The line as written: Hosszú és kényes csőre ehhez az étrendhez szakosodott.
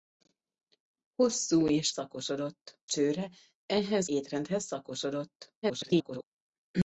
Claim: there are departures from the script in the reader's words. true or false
true